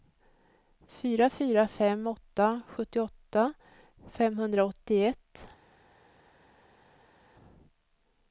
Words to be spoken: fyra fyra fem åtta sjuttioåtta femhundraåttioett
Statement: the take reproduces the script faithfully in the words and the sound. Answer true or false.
true